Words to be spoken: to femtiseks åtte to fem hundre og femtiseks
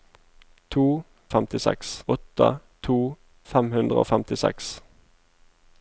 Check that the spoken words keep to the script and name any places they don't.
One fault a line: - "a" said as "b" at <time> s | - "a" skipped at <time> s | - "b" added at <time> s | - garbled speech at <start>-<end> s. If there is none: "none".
none